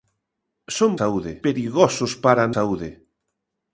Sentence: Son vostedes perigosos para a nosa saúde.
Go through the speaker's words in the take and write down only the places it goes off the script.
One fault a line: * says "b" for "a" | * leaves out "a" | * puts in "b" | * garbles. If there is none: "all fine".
* says "saúde" for "vostedes"
* leaves out "nosa"